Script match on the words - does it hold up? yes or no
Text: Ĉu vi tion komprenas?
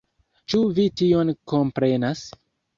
yes